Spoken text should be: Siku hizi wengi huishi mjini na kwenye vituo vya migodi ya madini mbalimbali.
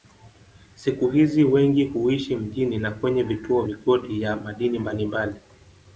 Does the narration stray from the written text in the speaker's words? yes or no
yes